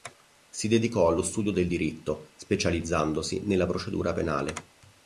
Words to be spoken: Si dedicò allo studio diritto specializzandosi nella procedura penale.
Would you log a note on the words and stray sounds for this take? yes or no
yes